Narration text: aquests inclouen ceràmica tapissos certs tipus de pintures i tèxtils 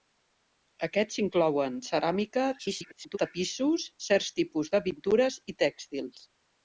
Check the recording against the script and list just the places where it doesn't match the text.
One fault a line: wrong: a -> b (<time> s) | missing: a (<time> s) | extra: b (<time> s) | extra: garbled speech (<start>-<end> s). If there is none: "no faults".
extra: garbled speech (2.6-3.2 s)